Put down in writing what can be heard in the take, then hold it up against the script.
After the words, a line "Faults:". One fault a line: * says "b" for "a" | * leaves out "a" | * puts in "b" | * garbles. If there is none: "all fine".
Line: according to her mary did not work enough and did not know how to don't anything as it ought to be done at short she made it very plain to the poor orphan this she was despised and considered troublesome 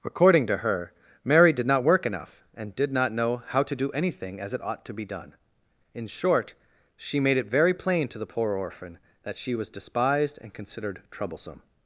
according to her mary did not work enough and did not know how to do anything as it ought to be done in short she made it very plain to the poor orphan that she was despised and considered troublesome
Faults:
* says "do" for "don't"
* says "in" for "at"
* says "that" for "this"